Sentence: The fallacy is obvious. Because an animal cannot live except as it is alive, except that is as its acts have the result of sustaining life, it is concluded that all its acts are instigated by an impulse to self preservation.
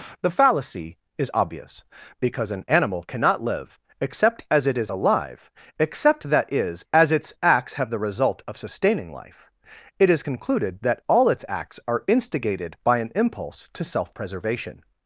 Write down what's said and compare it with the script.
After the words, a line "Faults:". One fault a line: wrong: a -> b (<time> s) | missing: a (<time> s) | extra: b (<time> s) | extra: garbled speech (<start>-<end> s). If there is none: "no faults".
The fallacy is obvious. Because an animal cannot live except as it is alive, except that is as its acts have the result of sustaining life, it is concluded that all its acts are instigated by an impulse to self preservation.
Faults:
no faults